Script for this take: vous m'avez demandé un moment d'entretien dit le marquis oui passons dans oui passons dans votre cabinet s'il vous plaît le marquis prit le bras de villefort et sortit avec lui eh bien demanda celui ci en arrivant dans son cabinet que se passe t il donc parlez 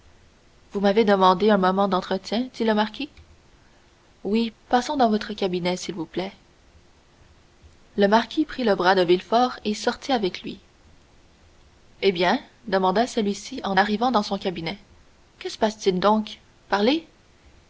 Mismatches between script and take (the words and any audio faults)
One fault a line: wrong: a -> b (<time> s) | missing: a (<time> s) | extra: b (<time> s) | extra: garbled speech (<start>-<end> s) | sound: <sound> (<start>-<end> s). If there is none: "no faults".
missing: oui passons dans (5.1 s)